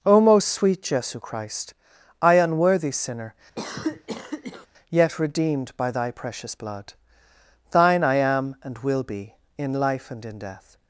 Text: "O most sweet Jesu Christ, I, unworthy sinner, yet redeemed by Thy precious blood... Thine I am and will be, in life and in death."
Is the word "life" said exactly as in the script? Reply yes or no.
yes